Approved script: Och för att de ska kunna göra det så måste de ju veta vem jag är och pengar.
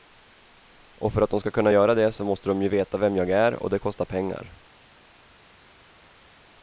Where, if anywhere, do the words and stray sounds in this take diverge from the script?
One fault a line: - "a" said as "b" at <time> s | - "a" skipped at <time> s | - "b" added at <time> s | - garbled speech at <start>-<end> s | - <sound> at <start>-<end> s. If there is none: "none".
- "det kostar" added at 3.7 s